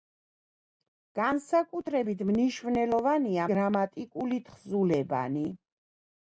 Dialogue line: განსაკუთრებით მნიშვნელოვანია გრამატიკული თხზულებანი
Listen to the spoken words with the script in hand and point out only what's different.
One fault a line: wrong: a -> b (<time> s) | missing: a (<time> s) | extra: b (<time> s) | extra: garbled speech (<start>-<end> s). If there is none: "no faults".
no faults